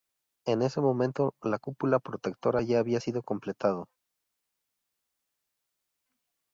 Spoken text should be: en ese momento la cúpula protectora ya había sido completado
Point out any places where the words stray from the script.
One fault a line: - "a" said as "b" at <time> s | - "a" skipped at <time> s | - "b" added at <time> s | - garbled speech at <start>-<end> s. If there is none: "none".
none